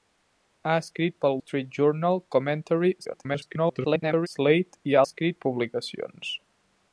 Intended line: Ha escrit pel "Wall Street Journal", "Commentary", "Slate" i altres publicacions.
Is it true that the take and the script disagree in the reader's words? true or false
true